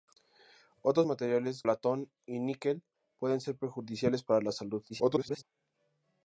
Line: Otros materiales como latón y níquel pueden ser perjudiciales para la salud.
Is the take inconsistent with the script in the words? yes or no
yes